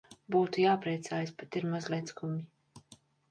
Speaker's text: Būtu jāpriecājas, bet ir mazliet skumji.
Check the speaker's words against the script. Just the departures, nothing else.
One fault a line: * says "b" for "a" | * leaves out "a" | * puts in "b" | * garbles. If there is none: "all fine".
all fine